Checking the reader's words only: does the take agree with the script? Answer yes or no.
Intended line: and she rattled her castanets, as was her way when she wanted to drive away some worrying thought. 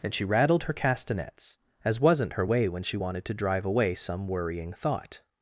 no